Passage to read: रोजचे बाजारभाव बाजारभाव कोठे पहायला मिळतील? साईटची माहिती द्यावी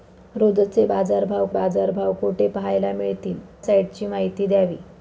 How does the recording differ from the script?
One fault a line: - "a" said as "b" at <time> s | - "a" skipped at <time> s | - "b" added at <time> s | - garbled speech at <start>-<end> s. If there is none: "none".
none